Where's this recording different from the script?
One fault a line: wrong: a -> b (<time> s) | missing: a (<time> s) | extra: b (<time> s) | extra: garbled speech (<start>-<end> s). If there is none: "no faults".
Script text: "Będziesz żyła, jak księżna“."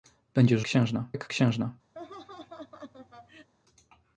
wrong: żyła -> księżna (0.6 s)